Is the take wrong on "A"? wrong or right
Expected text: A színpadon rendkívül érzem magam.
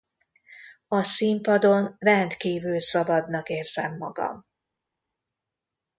right